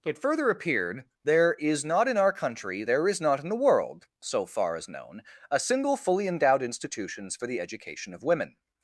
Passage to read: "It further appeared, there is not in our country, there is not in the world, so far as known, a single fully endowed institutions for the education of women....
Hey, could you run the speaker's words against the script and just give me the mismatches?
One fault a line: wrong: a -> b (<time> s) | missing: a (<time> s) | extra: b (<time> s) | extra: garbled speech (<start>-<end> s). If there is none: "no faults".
no faults